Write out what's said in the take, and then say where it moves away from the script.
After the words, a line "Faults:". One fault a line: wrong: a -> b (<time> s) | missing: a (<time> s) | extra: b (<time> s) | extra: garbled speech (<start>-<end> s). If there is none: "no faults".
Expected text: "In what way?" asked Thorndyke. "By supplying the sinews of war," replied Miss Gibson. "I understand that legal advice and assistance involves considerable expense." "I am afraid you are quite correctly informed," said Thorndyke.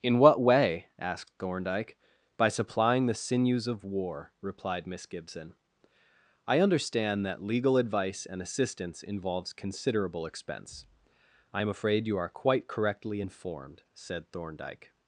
"In what way?" asked Thorndyke. "By supplying the sinews of war," replied Miss Gibson. "I understand that legal advice and assistance involves considerable expense." "I am afraid you are quite correctly informed," said Thorndyke.
Faults:
no faults